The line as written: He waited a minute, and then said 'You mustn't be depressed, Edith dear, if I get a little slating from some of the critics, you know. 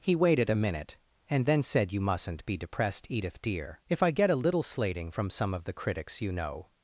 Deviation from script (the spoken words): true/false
false